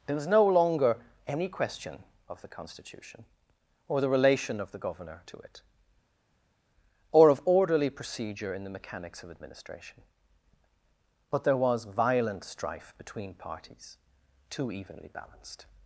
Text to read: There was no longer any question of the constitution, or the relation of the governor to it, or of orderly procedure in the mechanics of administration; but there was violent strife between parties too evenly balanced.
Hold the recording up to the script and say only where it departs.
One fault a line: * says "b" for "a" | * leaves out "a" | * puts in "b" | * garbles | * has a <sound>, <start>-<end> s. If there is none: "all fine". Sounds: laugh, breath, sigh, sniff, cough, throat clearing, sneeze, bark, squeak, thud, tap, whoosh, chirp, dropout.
all fine